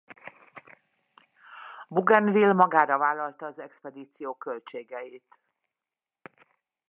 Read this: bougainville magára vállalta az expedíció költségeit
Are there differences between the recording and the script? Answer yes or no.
no